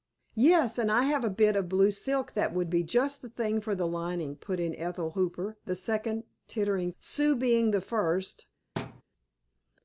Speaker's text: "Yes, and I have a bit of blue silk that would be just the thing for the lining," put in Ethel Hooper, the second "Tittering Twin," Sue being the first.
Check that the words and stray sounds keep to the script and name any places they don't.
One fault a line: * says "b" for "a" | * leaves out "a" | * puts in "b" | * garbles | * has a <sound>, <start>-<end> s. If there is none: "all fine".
* leaves out "Twin"
* has a thud, 8.8-9.0 s